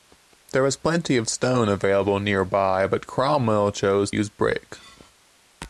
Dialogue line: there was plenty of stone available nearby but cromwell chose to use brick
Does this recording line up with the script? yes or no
no